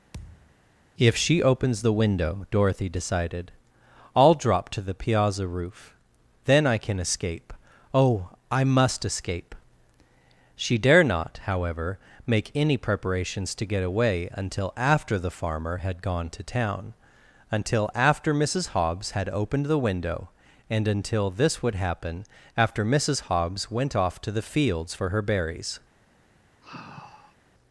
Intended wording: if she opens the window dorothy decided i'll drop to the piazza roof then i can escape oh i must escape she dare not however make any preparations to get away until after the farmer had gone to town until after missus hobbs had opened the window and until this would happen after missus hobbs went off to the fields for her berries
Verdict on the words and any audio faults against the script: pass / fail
fail